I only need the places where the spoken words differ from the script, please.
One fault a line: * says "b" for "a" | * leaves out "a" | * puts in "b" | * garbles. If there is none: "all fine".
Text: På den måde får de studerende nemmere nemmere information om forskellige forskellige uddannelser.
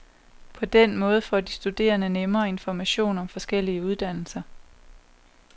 * leaves out "nemmere"
* leaves out "forskellige"